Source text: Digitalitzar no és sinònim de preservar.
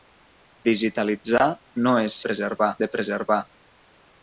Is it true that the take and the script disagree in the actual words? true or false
true